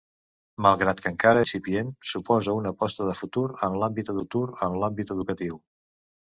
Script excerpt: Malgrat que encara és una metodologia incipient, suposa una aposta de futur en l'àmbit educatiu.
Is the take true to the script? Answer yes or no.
no